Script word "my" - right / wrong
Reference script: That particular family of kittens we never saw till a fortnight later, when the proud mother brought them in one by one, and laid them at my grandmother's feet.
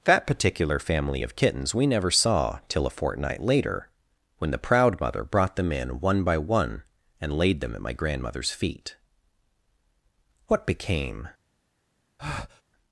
right